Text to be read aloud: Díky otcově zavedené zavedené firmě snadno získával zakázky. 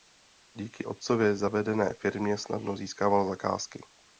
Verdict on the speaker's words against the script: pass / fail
fail